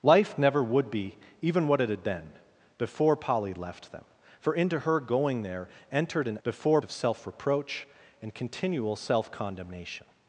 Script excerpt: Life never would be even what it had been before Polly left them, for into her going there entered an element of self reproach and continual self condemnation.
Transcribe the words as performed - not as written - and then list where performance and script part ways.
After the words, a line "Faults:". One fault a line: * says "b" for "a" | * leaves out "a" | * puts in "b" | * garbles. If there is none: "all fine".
Life never would be even what it had been before Polly left them, for into her going there entered an before of self reproach and continual self condemnation.
Faults:
* says "before" for "element"